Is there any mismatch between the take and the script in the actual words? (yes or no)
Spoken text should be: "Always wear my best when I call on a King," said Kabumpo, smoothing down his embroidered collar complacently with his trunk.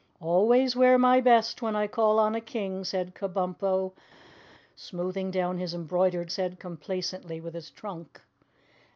yes